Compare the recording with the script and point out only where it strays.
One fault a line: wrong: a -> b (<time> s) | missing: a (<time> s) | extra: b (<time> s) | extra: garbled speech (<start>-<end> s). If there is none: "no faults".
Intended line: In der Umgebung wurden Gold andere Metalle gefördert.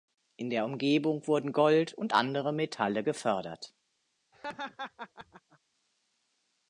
extra: und (1.9 s)